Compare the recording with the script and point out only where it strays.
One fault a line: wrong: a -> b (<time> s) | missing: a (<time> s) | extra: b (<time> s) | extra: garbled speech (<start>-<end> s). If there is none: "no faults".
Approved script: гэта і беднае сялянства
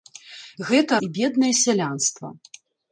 no faults